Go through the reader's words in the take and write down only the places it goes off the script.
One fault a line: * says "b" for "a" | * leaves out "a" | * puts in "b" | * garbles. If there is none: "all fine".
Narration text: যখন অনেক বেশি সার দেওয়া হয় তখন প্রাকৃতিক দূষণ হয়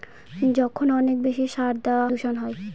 * leaves out "হয় তখন প্রাকৃতিক"